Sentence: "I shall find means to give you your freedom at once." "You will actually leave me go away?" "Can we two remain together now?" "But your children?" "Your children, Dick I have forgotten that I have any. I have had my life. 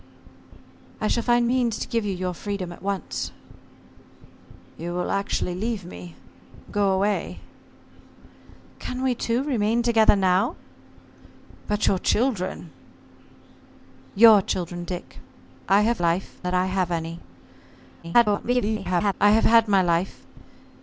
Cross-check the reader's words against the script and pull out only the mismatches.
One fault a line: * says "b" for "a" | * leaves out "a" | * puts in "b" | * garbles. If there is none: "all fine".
* says "life" for "forgotten"
* garbles